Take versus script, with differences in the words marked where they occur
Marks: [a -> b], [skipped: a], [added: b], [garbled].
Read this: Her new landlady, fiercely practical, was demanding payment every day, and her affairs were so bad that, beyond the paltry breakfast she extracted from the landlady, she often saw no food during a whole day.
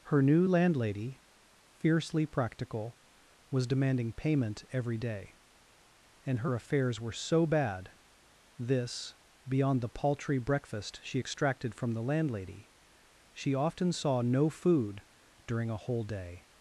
Her new landlady, fiercely practical, was demanding payment every day, and her affairs were so bad [that, -> this] beyond the paltry breakfast she extracted from the landlady, she often saw no food during a whole day.